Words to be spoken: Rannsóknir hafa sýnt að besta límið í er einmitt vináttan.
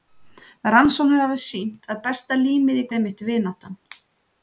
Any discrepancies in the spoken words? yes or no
no